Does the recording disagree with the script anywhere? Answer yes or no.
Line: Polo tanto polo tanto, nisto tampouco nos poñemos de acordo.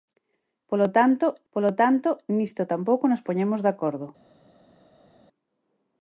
no